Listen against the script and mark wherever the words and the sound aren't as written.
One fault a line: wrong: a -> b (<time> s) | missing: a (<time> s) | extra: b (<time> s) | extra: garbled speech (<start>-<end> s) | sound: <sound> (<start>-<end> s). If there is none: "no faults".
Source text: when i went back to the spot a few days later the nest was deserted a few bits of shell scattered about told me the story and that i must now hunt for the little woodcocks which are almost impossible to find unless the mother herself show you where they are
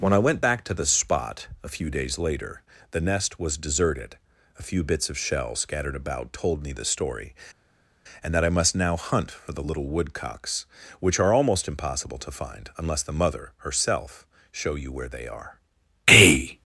extra: a (16.1 s)